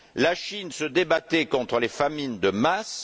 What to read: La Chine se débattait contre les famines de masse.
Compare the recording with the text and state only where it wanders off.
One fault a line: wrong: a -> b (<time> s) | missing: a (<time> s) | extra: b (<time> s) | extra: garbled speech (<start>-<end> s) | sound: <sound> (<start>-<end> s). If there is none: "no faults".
no faults